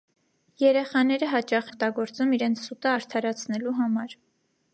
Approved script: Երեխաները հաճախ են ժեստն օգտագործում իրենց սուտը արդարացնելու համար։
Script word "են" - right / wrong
wrong